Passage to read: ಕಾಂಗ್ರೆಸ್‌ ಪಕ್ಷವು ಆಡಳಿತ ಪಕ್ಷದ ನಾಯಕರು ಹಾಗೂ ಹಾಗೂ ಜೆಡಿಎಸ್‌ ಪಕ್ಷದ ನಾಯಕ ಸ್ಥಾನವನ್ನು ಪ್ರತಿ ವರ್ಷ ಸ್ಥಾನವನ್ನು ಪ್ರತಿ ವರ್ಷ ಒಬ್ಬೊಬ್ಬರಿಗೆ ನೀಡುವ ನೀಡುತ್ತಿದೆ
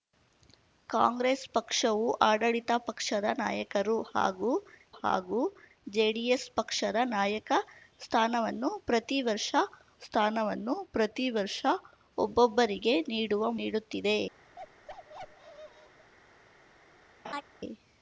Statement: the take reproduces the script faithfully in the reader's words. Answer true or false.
true